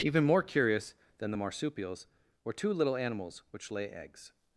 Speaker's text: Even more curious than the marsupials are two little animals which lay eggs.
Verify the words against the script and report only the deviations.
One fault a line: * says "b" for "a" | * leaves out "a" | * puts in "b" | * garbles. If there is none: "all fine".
* says "were" for "are"